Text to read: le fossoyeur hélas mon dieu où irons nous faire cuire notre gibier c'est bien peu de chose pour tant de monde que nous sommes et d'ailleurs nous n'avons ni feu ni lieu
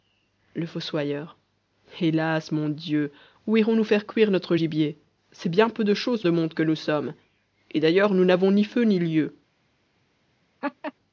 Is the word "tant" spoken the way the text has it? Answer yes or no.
no